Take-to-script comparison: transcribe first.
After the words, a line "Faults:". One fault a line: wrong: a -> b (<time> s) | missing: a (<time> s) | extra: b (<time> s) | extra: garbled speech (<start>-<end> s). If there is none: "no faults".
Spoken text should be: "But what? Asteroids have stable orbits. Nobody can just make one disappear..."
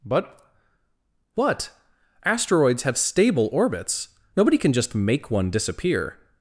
"But what? Asteroids have stable orbits. Nobody can just make one disappear..."
Faults:
no faults